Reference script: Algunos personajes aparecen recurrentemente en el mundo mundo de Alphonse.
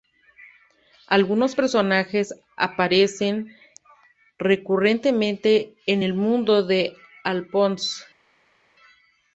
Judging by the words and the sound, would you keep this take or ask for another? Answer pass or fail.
fail